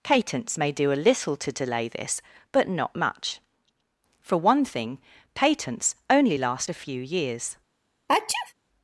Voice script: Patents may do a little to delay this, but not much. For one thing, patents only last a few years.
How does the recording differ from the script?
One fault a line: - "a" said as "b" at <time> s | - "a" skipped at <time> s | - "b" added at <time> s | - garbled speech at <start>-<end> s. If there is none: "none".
none